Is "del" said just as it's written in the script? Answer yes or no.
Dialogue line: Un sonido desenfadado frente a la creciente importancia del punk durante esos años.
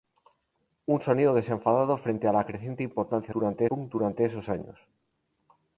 no